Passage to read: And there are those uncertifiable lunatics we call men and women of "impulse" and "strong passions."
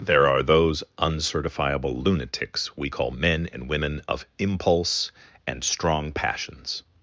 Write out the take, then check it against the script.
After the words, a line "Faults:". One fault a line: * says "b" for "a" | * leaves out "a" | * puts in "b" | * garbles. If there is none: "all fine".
there are those uncertifiable lunatics we call men and women of "impulse" and "strong passions."
Faults:
* leaves out "And"